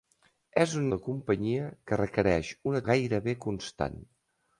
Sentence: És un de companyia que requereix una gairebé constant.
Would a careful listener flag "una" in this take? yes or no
no